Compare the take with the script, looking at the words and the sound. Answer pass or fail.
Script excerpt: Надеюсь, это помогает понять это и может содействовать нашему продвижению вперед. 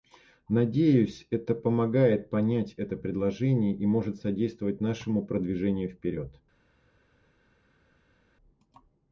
fail